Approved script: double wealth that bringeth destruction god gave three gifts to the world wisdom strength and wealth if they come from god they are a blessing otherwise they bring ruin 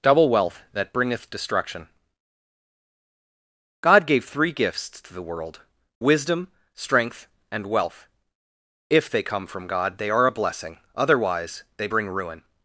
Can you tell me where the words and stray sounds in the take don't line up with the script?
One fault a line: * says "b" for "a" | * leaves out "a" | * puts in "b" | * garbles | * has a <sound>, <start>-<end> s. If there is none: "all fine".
all fine